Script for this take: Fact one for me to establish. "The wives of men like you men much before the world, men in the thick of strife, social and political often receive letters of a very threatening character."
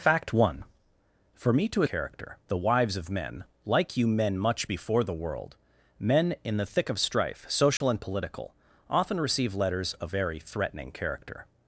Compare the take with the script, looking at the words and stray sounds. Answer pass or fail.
fail